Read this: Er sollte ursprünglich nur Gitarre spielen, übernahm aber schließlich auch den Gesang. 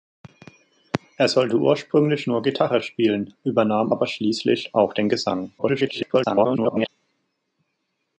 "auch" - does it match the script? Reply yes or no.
yes